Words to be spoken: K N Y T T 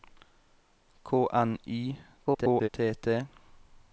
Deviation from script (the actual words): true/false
true